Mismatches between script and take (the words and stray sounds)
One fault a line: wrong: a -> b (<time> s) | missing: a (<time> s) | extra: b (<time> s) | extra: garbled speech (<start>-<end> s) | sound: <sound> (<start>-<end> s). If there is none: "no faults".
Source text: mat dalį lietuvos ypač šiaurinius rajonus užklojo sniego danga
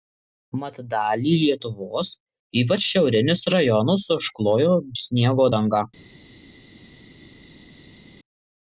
no faults